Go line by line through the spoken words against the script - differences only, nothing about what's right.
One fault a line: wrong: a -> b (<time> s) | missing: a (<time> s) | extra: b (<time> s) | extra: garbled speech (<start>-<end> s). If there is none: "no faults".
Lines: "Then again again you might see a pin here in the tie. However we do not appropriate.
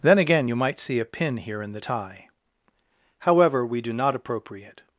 missing: again (0.5 s)